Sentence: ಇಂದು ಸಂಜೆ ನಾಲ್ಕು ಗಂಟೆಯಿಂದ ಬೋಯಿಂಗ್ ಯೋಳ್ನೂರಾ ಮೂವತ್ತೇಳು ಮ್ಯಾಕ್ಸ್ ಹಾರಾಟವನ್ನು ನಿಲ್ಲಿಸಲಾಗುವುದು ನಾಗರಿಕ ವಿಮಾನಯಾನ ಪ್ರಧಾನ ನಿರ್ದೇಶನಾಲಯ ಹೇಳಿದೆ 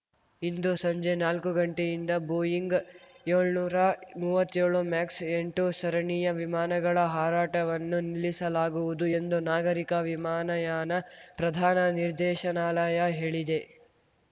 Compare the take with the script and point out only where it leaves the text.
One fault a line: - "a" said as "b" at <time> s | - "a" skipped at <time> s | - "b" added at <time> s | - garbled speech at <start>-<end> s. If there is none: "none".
- "ಎಂಟು ಸರಣಿಯ ವಿಮಾನಗಳ" added at 5.3 s
- "ಎಂದು" added at 9.2 s